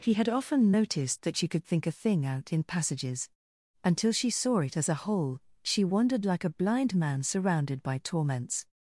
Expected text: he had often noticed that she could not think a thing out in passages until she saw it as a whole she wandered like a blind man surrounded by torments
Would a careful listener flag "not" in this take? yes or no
yes